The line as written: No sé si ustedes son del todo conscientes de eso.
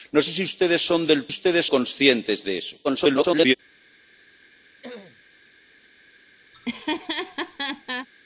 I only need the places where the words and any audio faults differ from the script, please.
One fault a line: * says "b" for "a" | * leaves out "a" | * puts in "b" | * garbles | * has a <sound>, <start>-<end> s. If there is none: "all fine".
* says "ustedes" for "todo"
* garbles
* has a throat clearing, 4.8-5.2 s
* has a laugh, 6.5-8.1 s